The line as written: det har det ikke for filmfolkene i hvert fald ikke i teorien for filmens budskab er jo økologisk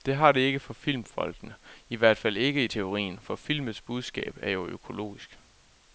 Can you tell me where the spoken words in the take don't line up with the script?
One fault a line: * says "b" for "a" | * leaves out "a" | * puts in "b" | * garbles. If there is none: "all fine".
all fine